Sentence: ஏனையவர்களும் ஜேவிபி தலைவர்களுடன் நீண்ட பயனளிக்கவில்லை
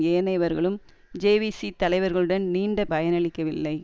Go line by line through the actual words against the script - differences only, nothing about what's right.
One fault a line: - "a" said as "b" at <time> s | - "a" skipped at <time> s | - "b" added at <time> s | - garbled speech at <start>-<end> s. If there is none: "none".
none